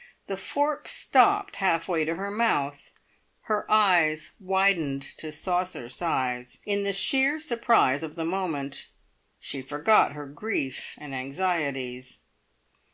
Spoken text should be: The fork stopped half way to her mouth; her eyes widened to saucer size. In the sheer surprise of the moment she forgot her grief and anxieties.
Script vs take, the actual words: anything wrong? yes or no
no